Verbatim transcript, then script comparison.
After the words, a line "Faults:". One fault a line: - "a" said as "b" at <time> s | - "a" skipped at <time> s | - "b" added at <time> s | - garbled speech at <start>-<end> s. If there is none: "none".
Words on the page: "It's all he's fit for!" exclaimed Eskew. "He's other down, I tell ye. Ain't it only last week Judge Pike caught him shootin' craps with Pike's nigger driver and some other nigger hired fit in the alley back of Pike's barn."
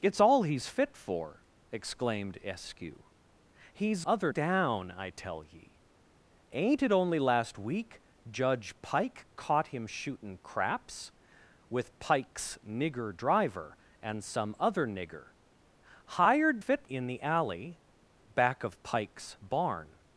"It's all he's fit for!" exclaimed Eskew. "He's other down, I tell ye. Ain't it only last week Judge Pike caught him shootin' craps with Pike's nigger driver and some other nigger hired fit in the alley back of Pike's barn."
Faults:
none